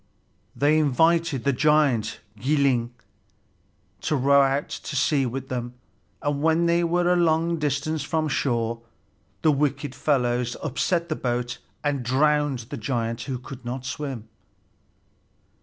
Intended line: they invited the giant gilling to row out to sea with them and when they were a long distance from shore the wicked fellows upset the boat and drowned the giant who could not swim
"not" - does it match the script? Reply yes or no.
yes